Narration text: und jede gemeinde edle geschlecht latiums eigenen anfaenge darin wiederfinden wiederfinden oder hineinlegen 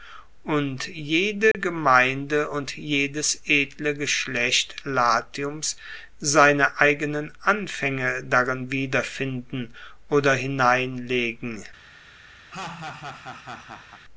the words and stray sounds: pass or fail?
fail